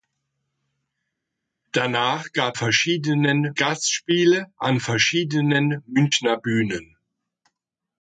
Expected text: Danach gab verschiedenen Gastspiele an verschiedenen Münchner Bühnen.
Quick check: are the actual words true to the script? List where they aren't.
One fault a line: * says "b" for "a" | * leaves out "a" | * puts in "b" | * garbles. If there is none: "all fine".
all fine